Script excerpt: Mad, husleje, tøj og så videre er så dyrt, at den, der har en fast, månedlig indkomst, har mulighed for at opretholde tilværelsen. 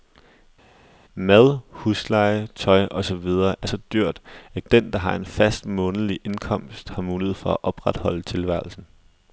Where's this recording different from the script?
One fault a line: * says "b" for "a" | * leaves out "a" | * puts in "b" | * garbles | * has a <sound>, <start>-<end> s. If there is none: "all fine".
all fine